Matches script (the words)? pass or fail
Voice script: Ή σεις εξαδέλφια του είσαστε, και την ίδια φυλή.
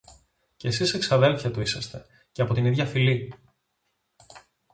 fail